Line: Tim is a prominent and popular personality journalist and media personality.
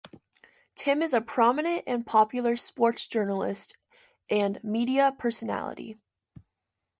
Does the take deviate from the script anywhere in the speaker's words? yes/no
yes